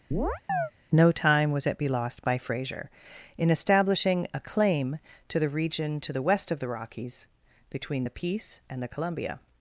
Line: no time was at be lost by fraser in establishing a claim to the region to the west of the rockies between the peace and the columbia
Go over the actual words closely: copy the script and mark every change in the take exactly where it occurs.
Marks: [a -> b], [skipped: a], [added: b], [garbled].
no time was at be lost by fraser in establishing a claim to the region to the west of the rockies between the peace and the columbia